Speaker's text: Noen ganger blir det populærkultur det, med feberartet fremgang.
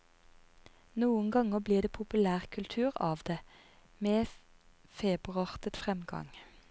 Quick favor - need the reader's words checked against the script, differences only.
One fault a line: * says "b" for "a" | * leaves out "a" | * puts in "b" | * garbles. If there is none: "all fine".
* puts in "av"